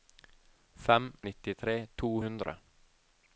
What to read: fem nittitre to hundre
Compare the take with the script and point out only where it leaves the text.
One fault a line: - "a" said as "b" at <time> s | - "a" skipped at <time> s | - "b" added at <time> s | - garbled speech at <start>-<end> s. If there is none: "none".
none